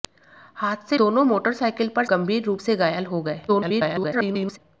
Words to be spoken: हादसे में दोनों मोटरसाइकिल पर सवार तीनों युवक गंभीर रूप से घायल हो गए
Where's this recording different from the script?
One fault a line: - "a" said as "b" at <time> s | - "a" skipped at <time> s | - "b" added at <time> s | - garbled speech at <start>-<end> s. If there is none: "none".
- "में" skipped at 1.0 s
- "सवार तीनों युवक" skipped at 2.0 s
- garbled speech at 3.5-4.6 s